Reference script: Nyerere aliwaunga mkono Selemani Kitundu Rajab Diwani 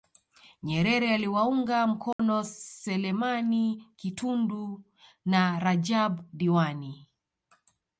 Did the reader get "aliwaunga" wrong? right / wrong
right